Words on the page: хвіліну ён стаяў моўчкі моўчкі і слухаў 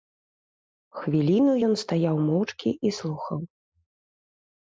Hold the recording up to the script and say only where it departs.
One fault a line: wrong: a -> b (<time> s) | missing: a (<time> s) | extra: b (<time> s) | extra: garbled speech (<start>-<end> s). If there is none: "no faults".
missing: моўчкі (2.7 s)